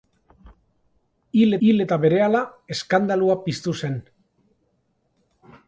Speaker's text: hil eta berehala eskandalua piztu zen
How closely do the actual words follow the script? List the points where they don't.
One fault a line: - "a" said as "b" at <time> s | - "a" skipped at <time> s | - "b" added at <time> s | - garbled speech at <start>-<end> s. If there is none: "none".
- "hil" added at 1.7 s